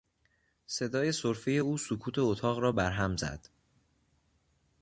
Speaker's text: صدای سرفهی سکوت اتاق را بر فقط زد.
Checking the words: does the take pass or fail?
fail